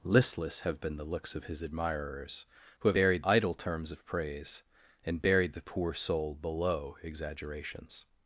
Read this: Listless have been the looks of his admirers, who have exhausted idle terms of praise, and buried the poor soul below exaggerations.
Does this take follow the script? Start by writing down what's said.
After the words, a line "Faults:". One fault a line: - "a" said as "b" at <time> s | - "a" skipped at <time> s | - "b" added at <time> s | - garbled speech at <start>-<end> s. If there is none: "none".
Listless have been the looks of his admirers, who have buried idle terms of praise, and buried the poor soul below exaggerations.
Faults:
- "exhausted" said as "buried" at 2.9 s